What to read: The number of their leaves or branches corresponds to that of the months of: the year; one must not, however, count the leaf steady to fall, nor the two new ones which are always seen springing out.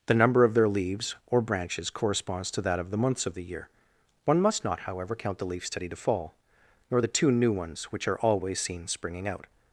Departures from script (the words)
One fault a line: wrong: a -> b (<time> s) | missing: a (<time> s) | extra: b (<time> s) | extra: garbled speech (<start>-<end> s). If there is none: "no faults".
no faults